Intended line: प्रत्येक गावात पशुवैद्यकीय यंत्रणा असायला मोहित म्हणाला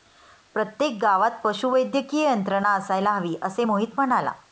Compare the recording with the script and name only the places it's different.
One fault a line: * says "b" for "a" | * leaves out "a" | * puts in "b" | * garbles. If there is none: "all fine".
* puts in "हवी असे"